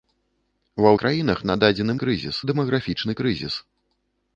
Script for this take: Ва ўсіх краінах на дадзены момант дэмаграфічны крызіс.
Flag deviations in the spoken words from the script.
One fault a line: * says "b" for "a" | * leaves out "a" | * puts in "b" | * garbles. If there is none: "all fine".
* leaves out "ўсіх"
* says "крызіс" for "момант"